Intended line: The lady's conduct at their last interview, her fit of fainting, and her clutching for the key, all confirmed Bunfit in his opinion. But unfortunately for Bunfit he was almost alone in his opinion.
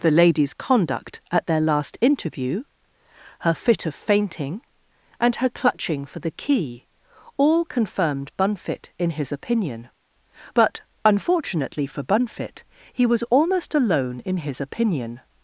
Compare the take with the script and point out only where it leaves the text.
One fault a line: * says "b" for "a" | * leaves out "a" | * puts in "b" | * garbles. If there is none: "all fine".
all fine